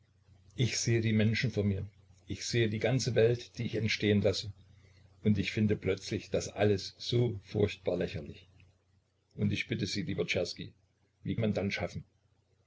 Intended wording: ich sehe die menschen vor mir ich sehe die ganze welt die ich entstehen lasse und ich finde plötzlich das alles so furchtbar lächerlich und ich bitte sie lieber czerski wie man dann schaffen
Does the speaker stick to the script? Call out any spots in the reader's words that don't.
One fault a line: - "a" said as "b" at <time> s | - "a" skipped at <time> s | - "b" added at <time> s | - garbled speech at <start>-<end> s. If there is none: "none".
none